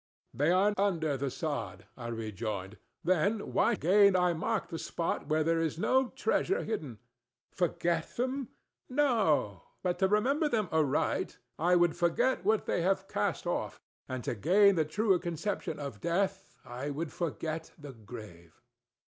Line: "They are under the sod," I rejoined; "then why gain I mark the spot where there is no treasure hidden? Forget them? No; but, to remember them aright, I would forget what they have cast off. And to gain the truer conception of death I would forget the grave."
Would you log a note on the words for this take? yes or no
no